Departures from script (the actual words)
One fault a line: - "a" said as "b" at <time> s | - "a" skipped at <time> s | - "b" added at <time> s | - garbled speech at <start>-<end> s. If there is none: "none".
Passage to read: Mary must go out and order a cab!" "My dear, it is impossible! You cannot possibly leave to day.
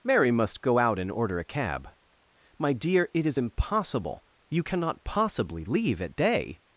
- "to" said as "at" at 6.0 s